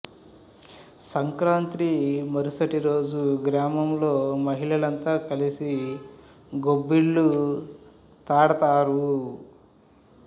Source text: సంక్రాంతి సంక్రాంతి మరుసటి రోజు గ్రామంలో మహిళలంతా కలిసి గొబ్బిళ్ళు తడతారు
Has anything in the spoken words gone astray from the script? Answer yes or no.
yes